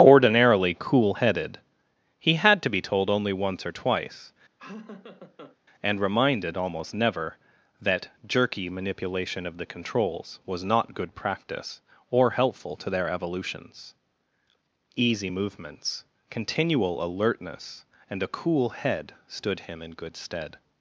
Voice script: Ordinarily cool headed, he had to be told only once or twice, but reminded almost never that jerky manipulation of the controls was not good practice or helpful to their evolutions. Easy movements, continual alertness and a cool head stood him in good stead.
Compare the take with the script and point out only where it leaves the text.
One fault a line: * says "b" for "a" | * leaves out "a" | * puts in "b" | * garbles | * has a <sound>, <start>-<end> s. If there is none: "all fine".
* has a laugh, 4.6-5.6 s
* says "and" for "but"